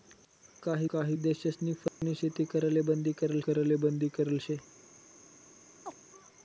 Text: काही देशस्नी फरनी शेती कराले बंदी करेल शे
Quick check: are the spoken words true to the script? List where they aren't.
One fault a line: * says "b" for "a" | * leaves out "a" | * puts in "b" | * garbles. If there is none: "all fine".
* puts in "काही"
* puts in "कराले बंदी करेल"